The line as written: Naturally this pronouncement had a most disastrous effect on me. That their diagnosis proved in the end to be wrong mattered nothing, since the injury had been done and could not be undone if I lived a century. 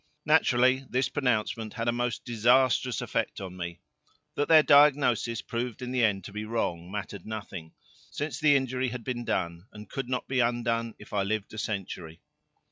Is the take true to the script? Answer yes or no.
yes